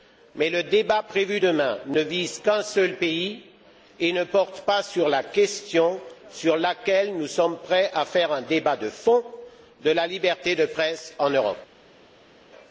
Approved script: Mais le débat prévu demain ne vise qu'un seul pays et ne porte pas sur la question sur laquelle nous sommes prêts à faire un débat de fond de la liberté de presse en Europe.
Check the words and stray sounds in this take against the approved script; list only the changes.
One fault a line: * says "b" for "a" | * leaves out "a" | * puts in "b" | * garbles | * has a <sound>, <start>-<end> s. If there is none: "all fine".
all fine